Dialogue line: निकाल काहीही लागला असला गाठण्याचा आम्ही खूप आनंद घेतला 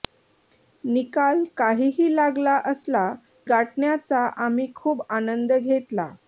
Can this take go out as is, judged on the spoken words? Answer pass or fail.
pass